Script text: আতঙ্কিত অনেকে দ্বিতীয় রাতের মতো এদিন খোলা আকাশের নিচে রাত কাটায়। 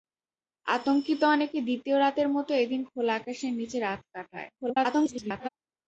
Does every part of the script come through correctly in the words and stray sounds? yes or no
no